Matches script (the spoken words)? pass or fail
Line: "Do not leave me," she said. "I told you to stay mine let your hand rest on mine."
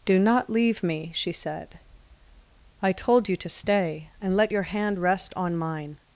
fail